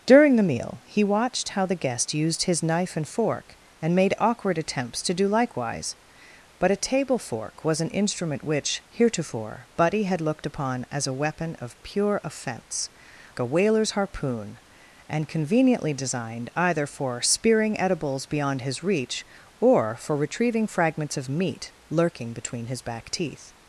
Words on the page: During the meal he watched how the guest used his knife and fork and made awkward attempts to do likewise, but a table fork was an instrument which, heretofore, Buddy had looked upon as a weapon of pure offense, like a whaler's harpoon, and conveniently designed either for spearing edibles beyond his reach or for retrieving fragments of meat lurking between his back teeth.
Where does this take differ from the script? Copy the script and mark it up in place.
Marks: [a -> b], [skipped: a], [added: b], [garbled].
During the meal he watched how the guest used his knife and fork and made awkward attempts to do likewise, but a table fork was an instrument which, heretofore, Buddy had looked upon as a weapon of pure offense, [skipped: like] a whaler's harpoon, and conveniently designed either for spearing edibles beyond his reach or for retrieving fragments of meat lurking between his back teeth.